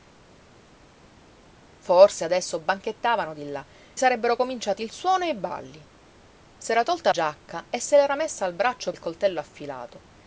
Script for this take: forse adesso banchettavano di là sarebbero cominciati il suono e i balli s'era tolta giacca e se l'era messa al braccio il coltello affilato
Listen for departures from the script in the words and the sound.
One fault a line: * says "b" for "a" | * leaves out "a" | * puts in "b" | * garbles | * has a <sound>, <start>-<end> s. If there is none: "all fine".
all fine